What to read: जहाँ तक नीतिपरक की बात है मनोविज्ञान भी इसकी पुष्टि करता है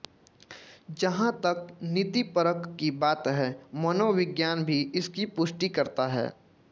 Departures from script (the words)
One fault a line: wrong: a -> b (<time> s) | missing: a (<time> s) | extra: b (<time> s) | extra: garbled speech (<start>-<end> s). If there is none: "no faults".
no faults